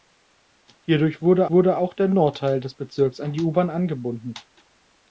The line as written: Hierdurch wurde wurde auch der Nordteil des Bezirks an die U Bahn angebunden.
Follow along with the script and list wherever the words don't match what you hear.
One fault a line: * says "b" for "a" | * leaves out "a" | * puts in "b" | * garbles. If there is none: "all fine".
all fine